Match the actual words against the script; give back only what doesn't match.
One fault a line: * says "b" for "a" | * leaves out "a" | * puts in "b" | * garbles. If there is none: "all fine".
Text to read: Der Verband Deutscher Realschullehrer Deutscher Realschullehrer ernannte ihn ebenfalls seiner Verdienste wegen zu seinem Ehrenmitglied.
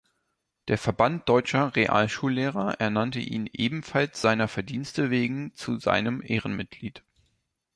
* leaves out "Deutscher Realschullehrer"